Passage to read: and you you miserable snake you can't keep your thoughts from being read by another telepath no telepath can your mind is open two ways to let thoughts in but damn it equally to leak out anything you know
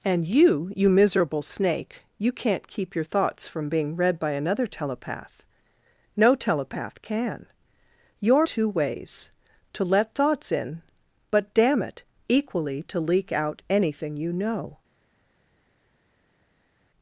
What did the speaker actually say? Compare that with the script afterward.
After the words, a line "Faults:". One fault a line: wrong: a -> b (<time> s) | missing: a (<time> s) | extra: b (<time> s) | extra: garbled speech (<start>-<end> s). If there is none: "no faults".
and you you miserable snake you can't keep your thoughts from being read by another telepath no telepath can your two ways to let thoughts in but damn it equally to leak out anything you know
Faults:
missing: mind is open (8.5 s)